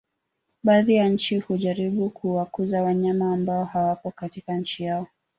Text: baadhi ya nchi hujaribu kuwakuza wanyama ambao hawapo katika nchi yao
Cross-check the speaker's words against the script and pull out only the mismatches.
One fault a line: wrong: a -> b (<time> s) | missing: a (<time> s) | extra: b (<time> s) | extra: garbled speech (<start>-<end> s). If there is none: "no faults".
no faults